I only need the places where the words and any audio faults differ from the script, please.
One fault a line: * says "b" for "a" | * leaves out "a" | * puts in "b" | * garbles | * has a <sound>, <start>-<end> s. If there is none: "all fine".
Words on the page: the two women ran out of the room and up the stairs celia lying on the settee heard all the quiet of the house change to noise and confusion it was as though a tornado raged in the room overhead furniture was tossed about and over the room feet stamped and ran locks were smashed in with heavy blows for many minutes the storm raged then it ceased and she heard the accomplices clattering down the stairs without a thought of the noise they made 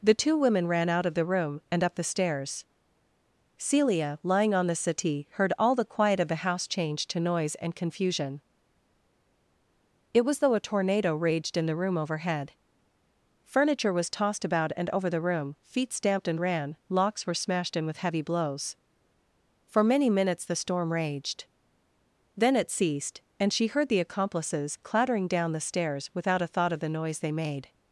* leaves out "as"